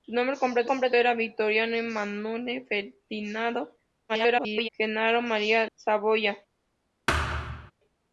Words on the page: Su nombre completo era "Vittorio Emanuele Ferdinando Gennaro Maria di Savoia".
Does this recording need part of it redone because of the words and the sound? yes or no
yes